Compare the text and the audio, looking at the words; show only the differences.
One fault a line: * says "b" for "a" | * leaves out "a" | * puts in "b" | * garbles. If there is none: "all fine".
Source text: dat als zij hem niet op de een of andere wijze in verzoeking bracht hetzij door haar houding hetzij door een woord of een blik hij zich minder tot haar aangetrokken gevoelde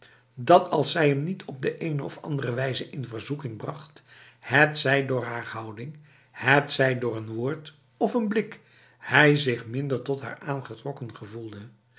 all fine